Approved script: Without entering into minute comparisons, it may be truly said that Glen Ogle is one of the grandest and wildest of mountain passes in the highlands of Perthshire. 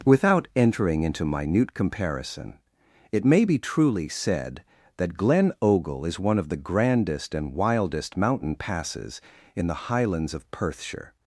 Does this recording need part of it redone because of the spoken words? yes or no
yes